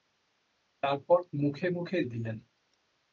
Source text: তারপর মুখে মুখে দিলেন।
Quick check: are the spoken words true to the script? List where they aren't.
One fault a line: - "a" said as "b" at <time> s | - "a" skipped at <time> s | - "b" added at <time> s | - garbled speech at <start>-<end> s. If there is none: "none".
none